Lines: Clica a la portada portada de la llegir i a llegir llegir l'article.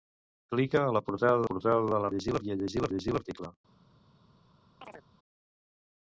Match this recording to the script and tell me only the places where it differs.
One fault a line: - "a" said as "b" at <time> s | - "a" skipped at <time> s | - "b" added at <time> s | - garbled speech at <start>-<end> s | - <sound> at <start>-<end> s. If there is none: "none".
- chirp at 4.8-5.0 s